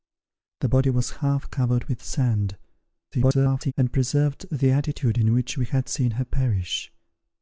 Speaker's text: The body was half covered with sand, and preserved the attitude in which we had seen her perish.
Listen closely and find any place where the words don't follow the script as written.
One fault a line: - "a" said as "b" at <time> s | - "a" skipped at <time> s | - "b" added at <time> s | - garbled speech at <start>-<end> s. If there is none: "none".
- garbled speech at 3.1-3.7 s